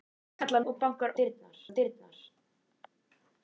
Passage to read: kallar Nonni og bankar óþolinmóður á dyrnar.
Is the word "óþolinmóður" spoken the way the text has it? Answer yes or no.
no